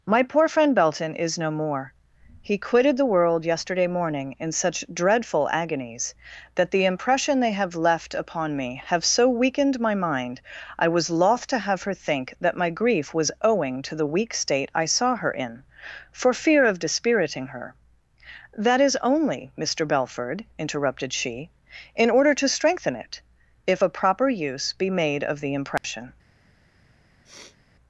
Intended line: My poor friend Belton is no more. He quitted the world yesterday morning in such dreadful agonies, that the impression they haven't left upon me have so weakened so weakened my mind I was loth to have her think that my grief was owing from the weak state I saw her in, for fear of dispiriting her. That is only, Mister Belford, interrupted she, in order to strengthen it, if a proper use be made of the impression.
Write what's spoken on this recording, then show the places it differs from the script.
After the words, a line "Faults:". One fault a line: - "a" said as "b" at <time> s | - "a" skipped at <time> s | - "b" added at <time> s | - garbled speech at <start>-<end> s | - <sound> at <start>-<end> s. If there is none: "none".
My poor friend Belton is no more. He quitted the world yesterday morning in such dreadful agonies, that the impression they have left upon me have so weakened my mind I was loth to have her think that my grief was owing to the weak state I saw her in, for fear of dispiriting her. That is only, Mister Belford, interrupted she, in order to strengthen it, if a proper use be made of the impression.
Faults:
- "haven't" said as "have" at 7.5 s
- "so weakened" skipped at 9.8 s
- "from" said as "to" at 13.8 s
- dropout at 25.8-25.8 s
- sniff at 27.2-27.6 s